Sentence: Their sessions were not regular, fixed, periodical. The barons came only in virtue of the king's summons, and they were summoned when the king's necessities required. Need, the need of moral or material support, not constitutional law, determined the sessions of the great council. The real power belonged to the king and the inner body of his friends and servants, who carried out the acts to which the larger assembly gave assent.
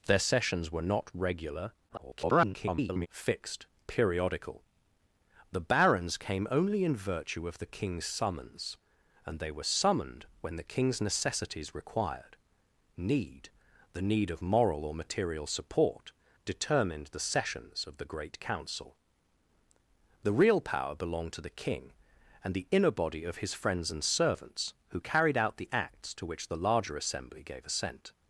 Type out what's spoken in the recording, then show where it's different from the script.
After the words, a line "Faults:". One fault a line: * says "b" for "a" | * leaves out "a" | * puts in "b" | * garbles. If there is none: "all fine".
Their sessions were not regular, [garbled] fixed, periodical. The barons came only in virtue of the king's summons, and they were summoned when the king's necessities required. Need, the need of moral or material support, determined the sessions of the great council. The real power belonged to the king and the inner body of his friends and servants, who carried out the acts to which the larger assembly gave assent.
Faults:
* garbles
* leaves out "not constitutional law"